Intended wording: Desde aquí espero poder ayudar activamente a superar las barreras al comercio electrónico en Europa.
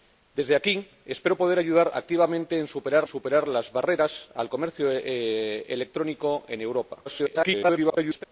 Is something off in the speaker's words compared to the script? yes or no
yes